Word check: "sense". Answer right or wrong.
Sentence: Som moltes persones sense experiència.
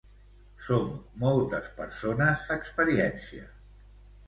wrong